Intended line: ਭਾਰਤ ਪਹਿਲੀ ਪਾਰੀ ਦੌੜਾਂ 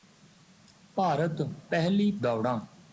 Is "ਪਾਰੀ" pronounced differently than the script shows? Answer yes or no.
yes